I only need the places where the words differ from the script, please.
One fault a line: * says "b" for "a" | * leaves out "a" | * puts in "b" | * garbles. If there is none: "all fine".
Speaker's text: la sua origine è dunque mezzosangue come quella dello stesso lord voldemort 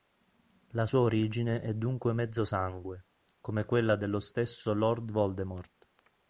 all fine